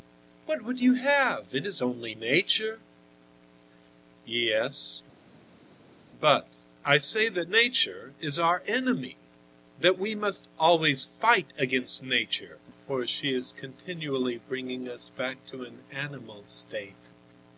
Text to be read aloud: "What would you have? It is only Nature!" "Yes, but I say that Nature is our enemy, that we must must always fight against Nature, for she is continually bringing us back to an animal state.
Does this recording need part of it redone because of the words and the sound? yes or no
yes